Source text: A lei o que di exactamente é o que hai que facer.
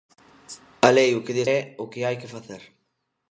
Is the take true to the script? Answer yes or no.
no